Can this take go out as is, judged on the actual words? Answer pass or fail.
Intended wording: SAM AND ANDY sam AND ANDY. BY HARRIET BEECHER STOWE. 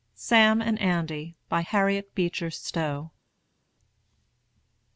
fail